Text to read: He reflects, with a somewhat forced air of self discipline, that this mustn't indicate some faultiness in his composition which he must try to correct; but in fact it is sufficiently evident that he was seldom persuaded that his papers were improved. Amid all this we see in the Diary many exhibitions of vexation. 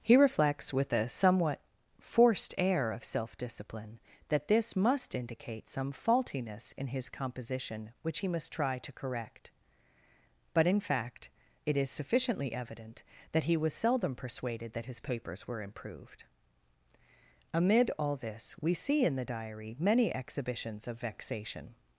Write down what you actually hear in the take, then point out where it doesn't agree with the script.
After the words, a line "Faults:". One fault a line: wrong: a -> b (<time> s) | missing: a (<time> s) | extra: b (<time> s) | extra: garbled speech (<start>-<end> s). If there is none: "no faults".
He reflects, with a somewhat forced air of self discipline, that this must indicate some faultiness in his composition which he must try to correct; but in fact it is sufficiently evident that he was seldom persuaded that his papers were improved. Amid all this we see in the Diary many exhibitions of vexation.
Faults:
wrong: mustn't -> must (4.8 s)